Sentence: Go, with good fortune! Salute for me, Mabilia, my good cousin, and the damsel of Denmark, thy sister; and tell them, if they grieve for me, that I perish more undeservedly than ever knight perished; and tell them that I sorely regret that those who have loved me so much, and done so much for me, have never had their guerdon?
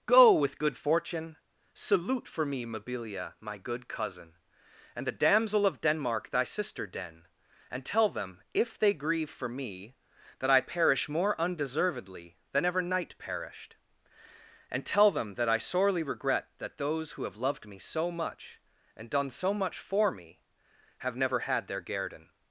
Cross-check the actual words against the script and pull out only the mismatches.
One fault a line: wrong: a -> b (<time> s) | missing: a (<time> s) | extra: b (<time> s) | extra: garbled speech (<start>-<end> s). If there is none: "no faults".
extra: den (6.8 s)